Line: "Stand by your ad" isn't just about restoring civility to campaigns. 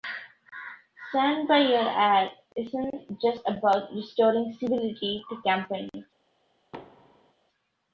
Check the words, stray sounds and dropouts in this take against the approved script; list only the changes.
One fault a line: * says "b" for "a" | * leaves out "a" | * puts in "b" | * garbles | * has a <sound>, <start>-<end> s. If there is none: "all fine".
* has a thud, 6.7-7.3 s